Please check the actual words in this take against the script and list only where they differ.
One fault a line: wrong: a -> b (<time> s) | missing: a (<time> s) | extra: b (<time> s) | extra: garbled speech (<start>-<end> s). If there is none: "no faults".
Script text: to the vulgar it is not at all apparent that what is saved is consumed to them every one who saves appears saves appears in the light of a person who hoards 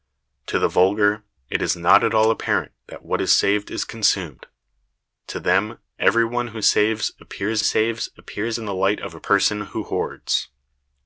no faults